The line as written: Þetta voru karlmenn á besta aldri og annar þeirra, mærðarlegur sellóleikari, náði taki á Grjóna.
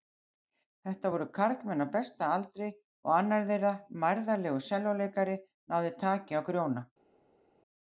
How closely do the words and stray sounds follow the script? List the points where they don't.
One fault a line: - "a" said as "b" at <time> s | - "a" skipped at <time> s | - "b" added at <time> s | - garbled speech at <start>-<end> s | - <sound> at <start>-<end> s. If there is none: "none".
none